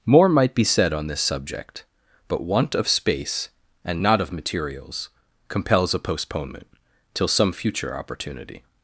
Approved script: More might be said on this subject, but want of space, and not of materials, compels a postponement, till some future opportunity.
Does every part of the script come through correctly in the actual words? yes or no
yes